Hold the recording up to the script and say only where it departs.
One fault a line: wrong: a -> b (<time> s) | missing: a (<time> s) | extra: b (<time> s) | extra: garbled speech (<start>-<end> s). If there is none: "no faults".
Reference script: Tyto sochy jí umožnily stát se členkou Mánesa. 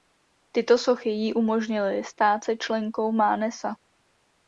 no faults